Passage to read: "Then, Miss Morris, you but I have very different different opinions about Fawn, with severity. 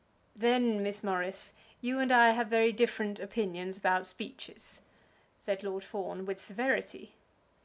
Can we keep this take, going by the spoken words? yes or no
no